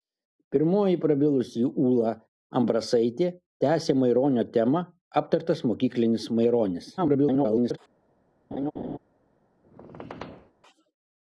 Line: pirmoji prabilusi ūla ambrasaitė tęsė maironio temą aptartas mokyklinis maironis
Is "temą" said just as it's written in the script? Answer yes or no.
yes